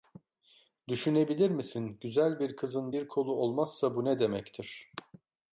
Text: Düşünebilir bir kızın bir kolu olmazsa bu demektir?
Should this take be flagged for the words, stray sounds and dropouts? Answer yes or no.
yes